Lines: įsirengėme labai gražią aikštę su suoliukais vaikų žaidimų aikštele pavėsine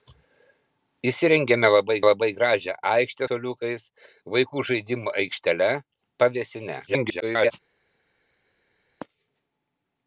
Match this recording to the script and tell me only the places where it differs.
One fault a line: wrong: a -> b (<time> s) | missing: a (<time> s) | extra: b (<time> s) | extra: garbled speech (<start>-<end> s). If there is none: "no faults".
extra: labai (2.1 s)
missing: su (3.3 s)
extra: garbled speech (6.9-7.5 s)